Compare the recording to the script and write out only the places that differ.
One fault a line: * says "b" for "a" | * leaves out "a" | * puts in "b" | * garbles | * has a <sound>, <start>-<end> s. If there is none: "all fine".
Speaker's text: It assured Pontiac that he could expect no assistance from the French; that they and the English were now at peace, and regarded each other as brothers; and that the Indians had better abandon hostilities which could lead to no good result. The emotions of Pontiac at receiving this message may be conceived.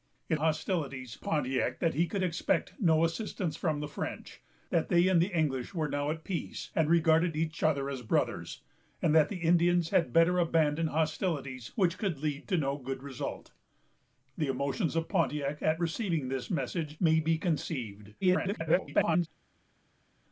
* says "hostilities" for "assured"
* garbles